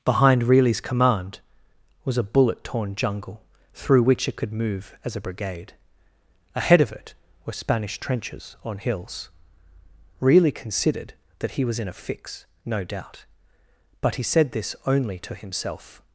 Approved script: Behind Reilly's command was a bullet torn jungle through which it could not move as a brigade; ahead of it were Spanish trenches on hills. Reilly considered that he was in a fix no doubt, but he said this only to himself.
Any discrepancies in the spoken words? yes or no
yes